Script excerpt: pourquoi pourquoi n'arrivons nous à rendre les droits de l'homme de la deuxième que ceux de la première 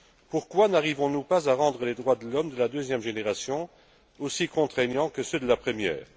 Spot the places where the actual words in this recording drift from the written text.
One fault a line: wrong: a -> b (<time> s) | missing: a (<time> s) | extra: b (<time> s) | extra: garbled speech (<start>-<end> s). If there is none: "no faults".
missing: pourquoi (0.7 s)
extra: pas (1.2 s)
extra: génération aussi contraignants (3.0 s)